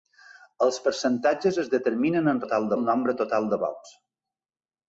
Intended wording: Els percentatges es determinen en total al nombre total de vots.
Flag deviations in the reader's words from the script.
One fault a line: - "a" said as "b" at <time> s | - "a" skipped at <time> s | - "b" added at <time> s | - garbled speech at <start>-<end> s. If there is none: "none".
none